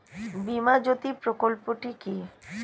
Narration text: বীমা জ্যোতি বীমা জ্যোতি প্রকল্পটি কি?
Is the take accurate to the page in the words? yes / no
no